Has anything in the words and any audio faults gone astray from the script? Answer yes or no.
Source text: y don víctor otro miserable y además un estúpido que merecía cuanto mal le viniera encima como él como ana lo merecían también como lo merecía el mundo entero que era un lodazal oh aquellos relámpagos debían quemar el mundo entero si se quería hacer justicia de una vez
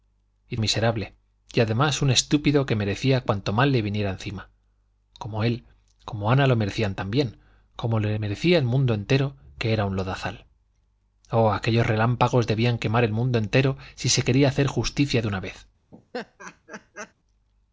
yes